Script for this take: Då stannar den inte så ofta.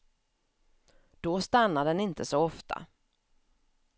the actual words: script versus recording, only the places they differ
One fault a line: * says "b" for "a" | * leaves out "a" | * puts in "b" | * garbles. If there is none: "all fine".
all fine